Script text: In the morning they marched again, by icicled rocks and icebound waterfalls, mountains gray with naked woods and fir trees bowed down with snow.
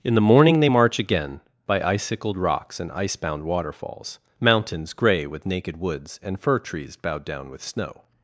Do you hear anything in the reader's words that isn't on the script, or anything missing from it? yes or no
yes